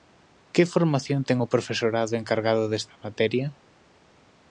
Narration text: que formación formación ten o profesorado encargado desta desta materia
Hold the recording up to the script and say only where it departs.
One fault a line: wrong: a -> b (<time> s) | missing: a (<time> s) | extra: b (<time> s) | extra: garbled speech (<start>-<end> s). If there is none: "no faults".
missing: formación (1.2 s)
missing: desta (3.0 s)